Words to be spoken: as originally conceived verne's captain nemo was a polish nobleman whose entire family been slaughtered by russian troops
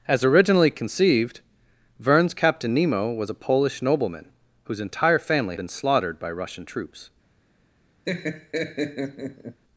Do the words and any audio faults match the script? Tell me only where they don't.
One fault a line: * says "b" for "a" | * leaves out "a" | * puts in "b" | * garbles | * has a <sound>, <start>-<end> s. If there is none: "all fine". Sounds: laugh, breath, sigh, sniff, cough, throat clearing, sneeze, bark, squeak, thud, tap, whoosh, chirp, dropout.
* has a laugh, 8.1-9.6 s